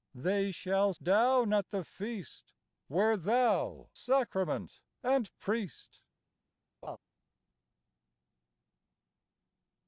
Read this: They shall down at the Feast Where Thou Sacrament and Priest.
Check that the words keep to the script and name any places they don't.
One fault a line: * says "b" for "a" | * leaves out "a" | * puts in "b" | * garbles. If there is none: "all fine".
all fine